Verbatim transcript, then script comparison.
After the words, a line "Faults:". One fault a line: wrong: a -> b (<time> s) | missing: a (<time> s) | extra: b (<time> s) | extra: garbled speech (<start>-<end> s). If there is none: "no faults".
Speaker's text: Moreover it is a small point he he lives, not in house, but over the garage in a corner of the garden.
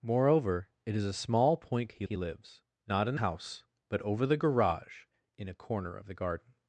Moreover it is a small point he he lives, not in house, but over the garage in a corner of the garden.
Faults:
no faults